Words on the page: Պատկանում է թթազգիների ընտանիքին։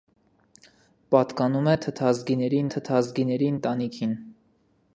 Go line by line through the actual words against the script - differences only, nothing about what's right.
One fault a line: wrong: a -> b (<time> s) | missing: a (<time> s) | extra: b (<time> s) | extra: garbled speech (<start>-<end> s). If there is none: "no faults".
extra: թթազգիների (2.8 s)